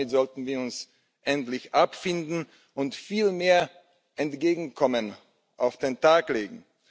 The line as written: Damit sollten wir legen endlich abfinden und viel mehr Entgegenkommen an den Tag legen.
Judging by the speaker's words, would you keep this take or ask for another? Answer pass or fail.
fail